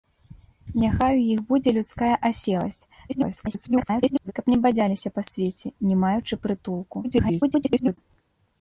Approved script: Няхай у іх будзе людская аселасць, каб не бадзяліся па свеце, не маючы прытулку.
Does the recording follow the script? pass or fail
fail